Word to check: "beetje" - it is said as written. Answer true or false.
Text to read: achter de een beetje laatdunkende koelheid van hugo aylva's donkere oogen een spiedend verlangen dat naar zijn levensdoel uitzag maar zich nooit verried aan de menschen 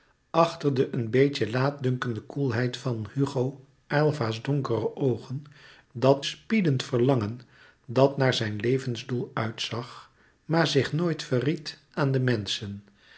true